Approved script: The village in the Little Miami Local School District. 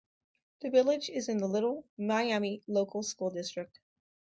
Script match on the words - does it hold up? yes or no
no